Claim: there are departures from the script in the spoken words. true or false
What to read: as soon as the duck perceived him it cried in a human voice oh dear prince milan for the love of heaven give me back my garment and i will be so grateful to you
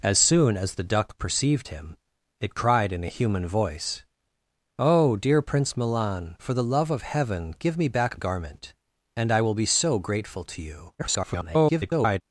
true